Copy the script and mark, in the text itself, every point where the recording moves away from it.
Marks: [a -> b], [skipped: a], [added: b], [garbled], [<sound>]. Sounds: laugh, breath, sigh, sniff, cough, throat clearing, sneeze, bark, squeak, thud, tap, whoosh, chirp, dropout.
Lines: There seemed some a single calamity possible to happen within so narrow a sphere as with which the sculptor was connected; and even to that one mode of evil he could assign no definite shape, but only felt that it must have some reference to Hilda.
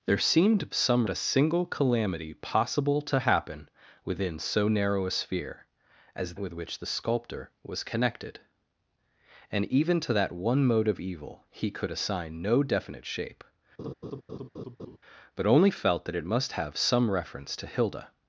There seemed some a single calamity possible to happen within so narrow a sphere as with which the sculptor was connected; and even to that one mode of evil he could assign no definite shape, [laugh] but only felt that it must have some reference to Hilda.